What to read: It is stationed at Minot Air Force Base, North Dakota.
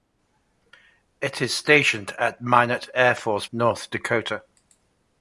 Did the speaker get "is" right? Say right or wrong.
right